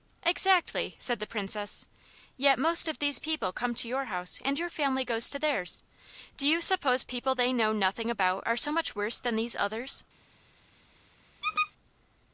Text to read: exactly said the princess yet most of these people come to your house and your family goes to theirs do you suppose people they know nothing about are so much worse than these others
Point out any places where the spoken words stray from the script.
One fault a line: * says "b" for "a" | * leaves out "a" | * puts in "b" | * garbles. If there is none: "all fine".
all fine